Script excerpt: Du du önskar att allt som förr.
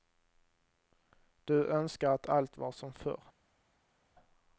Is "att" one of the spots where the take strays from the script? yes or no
no